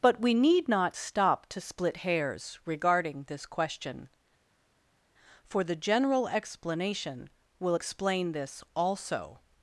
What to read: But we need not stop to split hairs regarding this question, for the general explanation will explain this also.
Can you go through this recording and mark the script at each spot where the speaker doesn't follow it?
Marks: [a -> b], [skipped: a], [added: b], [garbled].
But we need not stop to split hairs regarding this question, for the general explanation will explain this also.